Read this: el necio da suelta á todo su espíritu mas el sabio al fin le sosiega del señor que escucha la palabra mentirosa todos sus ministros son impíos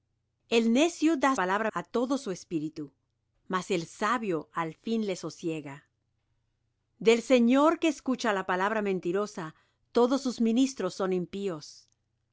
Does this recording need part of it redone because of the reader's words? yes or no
yes